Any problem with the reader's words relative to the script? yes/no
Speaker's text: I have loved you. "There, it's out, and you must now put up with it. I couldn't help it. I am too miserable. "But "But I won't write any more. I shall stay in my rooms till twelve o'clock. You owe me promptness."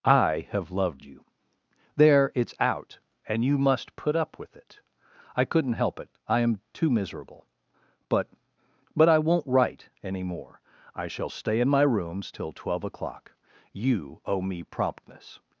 yes